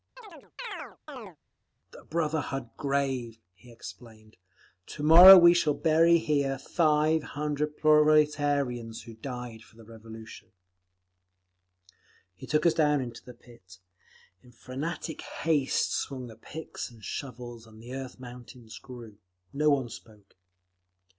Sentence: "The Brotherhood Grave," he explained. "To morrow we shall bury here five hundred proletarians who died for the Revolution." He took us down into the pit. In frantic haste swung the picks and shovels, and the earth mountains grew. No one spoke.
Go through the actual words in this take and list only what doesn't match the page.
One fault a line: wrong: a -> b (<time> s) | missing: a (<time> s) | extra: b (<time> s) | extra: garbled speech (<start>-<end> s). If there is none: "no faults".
no faults